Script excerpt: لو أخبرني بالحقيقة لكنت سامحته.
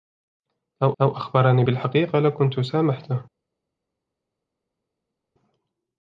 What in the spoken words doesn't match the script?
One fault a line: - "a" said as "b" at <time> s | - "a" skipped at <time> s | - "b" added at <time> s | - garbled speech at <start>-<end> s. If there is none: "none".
- "لو" added at 1.0 s